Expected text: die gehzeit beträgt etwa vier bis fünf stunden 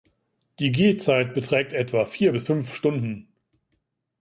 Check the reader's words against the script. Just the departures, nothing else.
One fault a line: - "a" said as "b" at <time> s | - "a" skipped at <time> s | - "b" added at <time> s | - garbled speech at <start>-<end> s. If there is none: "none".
none